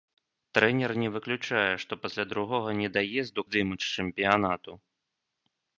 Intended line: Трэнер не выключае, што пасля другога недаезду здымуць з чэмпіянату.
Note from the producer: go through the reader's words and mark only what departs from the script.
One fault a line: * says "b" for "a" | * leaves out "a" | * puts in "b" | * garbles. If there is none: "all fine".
all fine